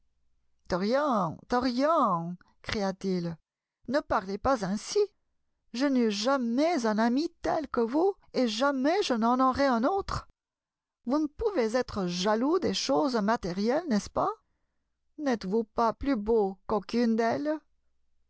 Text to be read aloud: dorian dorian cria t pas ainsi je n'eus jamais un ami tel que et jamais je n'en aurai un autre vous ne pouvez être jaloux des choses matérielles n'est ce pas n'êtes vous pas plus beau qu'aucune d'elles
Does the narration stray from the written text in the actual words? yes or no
yes